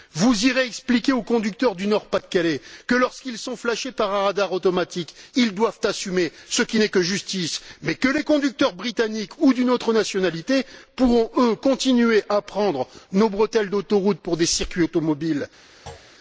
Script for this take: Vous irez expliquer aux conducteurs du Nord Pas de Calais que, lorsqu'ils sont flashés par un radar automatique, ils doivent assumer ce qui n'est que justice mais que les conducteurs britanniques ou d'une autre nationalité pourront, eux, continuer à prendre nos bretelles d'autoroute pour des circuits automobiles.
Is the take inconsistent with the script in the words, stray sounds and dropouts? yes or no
yes